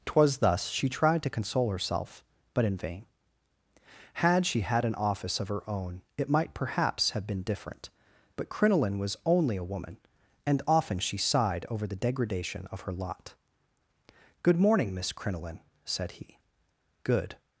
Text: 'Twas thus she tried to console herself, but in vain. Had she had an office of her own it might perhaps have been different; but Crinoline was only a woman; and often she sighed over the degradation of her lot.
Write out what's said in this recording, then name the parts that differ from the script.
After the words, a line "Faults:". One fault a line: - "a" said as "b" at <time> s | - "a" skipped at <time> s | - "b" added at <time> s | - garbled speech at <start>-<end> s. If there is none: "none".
'Twas thus she tried to console herself, but in vain. Had she had an office of her own it might perhaps have been different; but Crinoline was only a woman; and often she sighed over the degradation of her lot. "'Good morning, Miss Crinoline,' said he. "'Good
Faults:
- "Good morning Miss Crinoline said he Good" added at 14.4 s